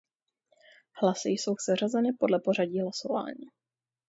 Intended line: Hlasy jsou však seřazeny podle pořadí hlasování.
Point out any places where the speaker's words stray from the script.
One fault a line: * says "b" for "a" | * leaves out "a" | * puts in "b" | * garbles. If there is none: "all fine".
* leaves out "však"